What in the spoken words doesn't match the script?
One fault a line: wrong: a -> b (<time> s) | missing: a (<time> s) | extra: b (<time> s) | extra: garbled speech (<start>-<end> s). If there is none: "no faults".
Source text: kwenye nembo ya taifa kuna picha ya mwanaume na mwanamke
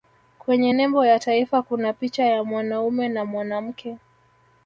no faults